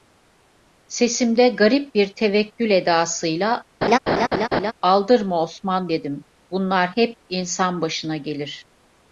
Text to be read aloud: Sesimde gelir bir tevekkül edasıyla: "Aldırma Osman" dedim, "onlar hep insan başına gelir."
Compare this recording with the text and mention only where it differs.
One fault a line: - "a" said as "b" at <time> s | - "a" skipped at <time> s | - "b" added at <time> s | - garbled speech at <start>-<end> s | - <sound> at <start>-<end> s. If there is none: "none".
- "gelir" said as "garip" at 1.5 s
- laugh at 3.8-4.7 s
- "onlar" said as "bunlar" at 6.5 s